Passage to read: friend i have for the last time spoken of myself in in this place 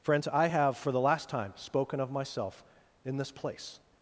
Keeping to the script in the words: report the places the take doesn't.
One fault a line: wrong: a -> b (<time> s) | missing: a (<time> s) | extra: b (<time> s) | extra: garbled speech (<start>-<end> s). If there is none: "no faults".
wrong: friend -> friends (0.0 s)
missing: in (3.2 s)